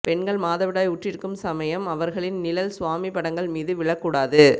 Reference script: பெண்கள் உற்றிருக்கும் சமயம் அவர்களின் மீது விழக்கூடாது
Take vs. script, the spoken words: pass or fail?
fail